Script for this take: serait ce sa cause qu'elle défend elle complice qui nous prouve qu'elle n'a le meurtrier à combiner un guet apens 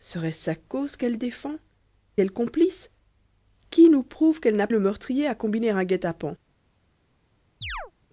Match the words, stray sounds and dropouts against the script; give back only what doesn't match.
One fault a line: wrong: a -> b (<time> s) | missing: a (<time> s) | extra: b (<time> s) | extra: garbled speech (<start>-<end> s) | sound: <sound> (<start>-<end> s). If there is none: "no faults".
sound: chirp (7.6-7.9 s)